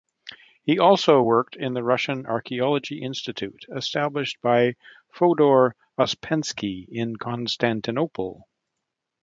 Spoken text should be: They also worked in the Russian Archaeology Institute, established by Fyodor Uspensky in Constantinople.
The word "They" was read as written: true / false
false